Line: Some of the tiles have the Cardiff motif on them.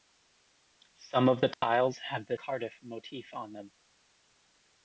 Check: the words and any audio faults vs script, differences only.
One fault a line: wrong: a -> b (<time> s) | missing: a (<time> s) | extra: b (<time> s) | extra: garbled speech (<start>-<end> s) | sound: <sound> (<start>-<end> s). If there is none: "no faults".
sound: dropout (1.5-1.6 s)